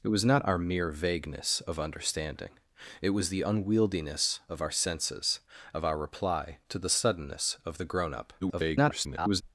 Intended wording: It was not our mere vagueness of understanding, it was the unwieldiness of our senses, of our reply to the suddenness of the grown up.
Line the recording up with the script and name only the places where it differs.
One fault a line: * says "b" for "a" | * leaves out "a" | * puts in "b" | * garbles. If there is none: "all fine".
* garbles